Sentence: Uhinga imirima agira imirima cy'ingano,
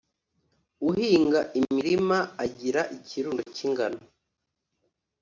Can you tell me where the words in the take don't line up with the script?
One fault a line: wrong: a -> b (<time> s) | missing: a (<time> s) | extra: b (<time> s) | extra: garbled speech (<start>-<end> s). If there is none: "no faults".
wrong: imirima -> ikirundo (3.0 s)